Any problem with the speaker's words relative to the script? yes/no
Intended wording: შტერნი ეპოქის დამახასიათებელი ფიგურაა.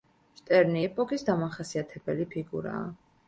no